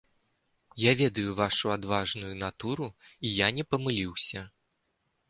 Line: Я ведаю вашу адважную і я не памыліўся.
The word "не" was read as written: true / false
true